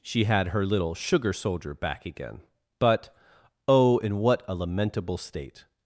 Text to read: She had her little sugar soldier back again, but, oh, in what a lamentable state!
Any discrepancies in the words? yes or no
no